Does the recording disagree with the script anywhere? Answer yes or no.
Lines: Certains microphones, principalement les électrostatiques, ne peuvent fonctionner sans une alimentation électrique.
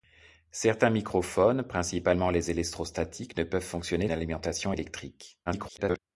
yes